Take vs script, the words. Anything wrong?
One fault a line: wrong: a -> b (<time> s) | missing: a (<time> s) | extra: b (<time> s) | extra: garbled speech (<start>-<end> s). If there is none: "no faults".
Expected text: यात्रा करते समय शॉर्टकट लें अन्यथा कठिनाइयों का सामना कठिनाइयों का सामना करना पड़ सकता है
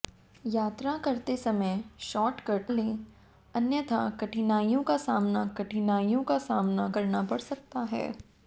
no faults